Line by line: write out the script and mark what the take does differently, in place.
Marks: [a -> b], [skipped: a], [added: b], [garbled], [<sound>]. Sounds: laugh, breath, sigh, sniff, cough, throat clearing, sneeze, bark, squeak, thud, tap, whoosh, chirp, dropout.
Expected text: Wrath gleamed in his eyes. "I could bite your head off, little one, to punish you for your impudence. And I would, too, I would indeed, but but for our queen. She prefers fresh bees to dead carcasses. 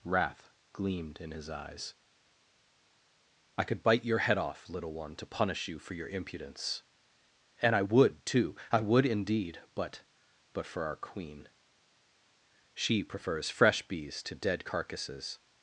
Wrath gleamed in his eyes. "I could bite your head off, little one, to punish you for your impudence. And I would, too, I would indeed, but but for our queen. She prefers fresh bees to dead carcasses.